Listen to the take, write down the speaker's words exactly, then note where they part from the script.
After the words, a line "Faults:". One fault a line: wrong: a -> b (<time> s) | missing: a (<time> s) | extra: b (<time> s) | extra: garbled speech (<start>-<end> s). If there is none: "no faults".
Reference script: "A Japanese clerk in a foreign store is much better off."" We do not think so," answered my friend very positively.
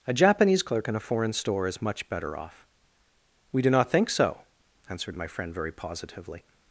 "A Japanese clerk in a foreign store is much better off."" We do not think so," answered my friend very positively.
Faults:
no faults